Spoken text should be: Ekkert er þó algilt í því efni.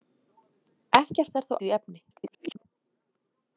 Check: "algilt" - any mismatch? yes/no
yes